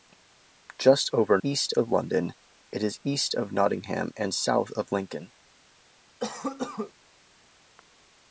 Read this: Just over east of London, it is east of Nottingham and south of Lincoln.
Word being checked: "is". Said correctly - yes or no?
yes